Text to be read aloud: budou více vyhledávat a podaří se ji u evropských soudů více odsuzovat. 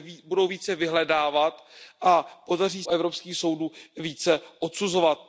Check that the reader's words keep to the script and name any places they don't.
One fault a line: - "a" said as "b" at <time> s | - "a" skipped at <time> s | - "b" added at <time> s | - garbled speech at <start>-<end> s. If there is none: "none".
- "se ji u" skipped at 2.8 s